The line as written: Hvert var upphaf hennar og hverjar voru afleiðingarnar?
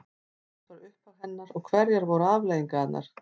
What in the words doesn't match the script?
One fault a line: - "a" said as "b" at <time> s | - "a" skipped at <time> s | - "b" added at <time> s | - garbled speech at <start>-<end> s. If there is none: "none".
none